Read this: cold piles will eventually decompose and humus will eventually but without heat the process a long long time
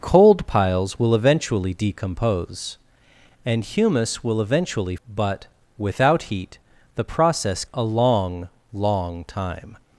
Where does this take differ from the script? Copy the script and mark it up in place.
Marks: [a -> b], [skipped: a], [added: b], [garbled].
cold piles will eventually decompose and humus will eventually but without heat the process a long long time